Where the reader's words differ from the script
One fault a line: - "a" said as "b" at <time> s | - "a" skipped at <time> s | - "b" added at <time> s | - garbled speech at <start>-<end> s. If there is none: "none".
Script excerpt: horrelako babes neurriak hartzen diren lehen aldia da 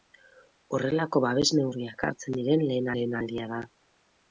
- "lehen" added at 3.0 s